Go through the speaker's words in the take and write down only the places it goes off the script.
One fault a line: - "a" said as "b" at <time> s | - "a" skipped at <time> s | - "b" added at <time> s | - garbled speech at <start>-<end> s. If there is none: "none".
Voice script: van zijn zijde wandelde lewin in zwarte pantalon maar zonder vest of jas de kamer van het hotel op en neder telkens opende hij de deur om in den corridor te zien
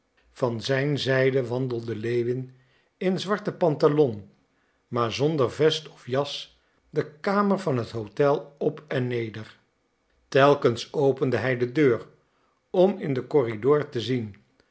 none